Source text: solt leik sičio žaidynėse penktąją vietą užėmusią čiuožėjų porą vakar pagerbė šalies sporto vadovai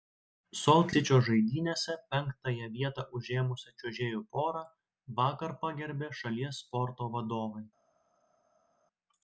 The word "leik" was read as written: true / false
false